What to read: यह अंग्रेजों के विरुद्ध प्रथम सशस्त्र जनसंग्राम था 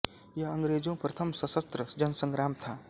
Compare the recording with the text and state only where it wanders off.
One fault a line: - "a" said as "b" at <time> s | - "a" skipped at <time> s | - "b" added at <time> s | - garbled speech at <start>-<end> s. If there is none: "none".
- "के विरुद्ध" skipped at 0.9 s